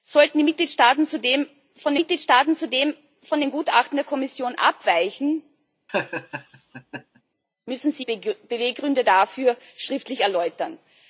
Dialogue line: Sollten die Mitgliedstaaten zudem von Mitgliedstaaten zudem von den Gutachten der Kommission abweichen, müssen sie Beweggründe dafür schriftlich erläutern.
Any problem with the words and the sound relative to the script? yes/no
yes